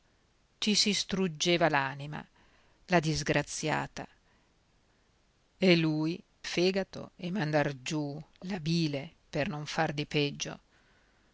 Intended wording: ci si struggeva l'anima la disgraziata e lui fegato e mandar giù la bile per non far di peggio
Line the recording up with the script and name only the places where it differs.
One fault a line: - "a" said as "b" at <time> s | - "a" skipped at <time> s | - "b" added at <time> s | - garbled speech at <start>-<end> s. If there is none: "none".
none